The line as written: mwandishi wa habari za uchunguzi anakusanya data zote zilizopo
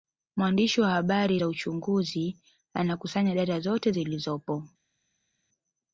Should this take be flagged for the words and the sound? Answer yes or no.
no